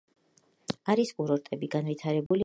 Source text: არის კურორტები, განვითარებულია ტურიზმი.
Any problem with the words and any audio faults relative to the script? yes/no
yes